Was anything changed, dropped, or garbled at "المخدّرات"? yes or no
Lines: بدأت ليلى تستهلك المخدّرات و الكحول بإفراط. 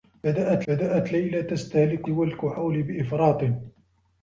yes